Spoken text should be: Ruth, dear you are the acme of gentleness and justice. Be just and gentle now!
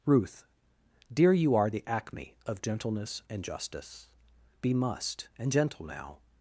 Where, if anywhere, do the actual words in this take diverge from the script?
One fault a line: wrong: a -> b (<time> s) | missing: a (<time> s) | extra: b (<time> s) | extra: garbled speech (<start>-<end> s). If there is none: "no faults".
wrong: just -> must (4.7 s)